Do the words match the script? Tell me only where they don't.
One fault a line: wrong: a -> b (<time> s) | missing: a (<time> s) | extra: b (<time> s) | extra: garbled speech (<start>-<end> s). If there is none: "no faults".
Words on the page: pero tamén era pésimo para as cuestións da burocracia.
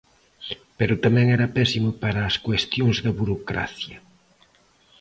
no faults